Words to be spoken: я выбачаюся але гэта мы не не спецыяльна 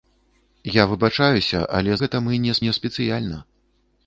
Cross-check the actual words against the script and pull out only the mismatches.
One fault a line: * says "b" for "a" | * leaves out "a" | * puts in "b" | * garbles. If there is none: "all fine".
all fine